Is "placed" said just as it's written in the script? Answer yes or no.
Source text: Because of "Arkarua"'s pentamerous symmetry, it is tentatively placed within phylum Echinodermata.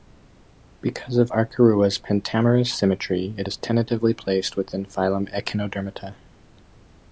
yes